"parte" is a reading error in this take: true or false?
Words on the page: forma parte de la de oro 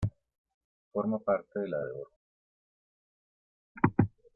false